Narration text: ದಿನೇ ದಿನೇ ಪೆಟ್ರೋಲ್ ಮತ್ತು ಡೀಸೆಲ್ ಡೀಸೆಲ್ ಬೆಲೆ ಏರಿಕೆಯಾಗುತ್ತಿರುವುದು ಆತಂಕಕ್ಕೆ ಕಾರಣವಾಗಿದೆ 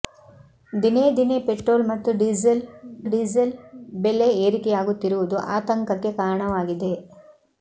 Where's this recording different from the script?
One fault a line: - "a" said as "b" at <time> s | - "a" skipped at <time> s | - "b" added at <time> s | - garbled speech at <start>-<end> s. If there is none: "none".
none